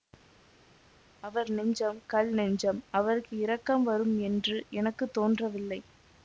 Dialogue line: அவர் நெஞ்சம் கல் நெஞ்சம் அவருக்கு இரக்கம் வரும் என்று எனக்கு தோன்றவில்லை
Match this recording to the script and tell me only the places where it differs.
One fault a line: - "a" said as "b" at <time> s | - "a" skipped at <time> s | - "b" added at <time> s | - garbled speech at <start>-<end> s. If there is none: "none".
none